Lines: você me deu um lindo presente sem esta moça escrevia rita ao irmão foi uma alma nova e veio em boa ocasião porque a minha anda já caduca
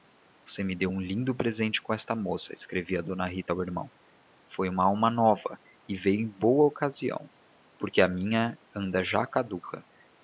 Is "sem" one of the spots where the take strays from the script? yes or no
yes